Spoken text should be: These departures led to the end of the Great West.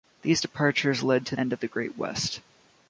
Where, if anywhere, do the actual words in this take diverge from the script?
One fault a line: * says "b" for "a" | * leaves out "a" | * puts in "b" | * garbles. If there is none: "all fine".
* leaves out "the"